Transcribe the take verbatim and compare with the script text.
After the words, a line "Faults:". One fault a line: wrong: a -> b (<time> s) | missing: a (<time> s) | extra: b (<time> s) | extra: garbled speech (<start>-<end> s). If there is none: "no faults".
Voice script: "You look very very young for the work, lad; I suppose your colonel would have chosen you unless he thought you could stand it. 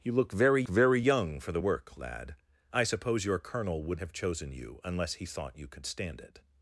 "You look very very young for the work, lad; I suppose your colonel would have chosen you unless he thought you could stand it.
Faults:
no faults